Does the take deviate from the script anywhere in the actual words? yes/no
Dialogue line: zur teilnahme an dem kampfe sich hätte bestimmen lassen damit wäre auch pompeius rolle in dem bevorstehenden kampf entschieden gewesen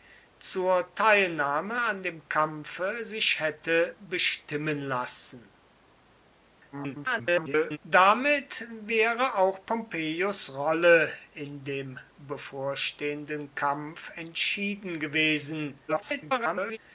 yes